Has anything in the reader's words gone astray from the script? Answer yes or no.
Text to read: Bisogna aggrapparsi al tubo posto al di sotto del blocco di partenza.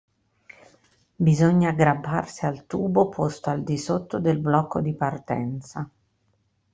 no